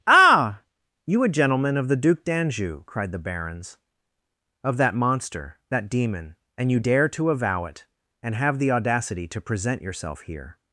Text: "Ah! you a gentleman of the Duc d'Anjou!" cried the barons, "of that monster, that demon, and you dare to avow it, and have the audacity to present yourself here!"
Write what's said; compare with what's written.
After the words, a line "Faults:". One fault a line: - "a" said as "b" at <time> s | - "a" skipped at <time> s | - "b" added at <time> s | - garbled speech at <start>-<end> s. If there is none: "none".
"Ah! you a gentleman of the Duc d'Anjou!" cried the barons, "of that monster, that demon, and you dare to avow it, and have the audacity to present yourself here!"
Faults:
none